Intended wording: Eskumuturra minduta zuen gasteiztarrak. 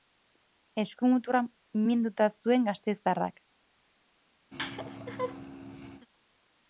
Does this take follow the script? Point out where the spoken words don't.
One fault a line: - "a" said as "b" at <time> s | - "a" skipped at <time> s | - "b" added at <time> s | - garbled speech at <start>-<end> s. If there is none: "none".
none